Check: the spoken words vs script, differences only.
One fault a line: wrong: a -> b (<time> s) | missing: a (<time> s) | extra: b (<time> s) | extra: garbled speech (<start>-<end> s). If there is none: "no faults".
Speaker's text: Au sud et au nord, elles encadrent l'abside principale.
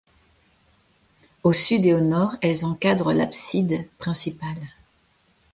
no faults